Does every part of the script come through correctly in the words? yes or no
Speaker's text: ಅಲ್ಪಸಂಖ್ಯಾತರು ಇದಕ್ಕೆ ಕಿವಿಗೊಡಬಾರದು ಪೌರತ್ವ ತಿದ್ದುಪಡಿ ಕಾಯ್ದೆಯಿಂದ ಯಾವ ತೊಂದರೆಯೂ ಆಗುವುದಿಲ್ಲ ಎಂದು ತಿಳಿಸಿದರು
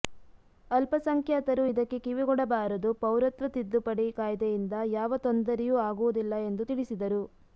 yes